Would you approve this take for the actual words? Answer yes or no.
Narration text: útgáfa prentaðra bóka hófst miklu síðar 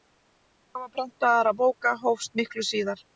yes